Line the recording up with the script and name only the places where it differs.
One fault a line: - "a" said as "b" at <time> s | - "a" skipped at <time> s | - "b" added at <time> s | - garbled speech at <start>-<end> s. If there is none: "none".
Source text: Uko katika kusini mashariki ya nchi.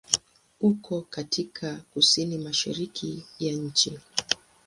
none